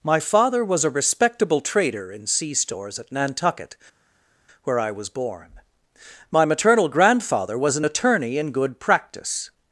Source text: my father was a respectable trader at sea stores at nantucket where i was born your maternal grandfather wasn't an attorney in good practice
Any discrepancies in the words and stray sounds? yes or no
yes